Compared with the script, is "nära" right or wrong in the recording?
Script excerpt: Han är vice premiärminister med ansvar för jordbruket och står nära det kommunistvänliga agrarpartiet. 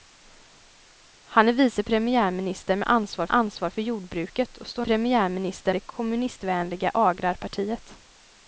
wrong